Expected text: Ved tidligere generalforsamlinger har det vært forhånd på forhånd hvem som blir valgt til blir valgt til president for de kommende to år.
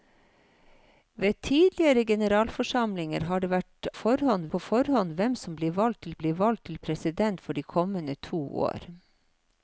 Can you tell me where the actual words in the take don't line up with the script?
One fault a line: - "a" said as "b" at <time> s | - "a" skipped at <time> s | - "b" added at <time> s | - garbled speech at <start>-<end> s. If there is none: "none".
none